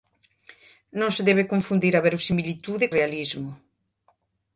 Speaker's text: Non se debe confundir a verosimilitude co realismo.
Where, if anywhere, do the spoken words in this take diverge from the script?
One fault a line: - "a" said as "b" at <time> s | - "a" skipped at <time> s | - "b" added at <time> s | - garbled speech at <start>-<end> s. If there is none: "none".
- "co" skipped at 2.9 s